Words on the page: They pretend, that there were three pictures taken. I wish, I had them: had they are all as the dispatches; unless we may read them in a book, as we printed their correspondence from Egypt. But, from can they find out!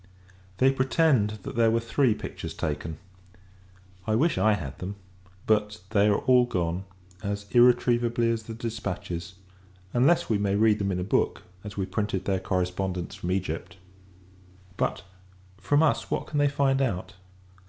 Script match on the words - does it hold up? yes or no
no